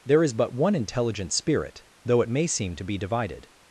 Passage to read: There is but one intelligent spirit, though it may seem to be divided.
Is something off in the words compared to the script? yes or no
no